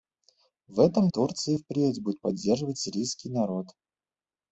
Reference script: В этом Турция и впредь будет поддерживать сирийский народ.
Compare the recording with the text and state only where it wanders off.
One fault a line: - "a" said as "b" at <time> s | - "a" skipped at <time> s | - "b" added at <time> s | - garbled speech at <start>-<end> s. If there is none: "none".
none